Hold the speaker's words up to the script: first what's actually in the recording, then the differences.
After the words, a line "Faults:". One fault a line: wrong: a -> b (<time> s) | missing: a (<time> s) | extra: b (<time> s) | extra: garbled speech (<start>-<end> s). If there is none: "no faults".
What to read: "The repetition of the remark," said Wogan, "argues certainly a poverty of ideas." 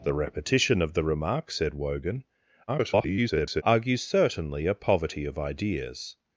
"The repetition of the remark," said Wogan, [garbled] "argues certainly a poverty of ideas."
Faults:
extra: garbled speech (2.7-3.6 s)